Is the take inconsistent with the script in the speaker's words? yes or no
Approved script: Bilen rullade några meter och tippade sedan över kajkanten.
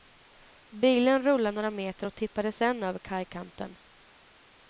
no